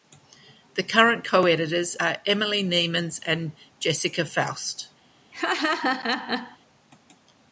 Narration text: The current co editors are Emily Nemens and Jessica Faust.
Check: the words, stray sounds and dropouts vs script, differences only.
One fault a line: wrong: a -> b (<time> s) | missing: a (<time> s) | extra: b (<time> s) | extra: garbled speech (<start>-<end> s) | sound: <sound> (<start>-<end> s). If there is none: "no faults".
sound: laugh (5.3-6.6 s)